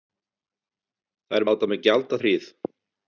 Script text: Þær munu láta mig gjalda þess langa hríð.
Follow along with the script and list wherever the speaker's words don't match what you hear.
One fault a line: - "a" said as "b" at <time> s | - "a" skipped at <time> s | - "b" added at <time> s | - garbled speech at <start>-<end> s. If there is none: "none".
- "munu" skipped at 1.4 s
- "þess langa" skipped at 2.2 s